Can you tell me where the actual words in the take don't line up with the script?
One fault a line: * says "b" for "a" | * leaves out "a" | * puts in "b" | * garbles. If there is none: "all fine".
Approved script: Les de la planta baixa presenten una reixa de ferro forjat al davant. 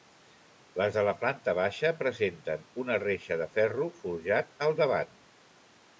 all fine